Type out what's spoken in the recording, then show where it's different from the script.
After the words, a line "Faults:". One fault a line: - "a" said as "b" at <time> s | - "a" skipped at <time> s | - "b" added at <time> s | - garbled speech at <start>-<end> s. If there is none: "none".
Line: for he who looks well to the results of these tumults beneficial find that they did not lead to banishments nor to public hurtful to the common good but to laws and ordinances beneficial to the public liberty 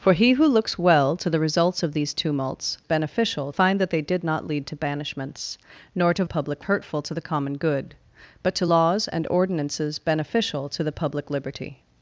for he who looks well to the results of these tumults beneficial find that they did not lead to banishments nor to public hurtful to the common good but to laws and ordinances beneficial to the public liberty
Faults:
none